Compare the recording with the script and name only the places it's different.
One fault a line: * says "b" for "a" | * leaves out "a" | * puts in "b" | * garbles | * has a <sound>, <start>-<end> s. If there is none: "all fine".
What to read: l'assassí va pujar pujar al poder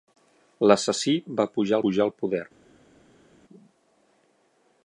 all fine